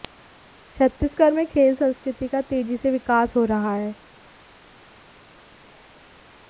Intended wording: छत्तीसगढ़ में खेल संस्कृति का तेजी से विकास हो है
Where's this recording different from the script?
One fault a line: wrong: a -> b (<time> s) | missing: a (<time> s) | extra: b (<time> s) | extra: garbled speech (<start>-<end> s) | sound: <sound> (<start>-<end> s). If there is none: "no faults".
extra: रहा (3.4 s)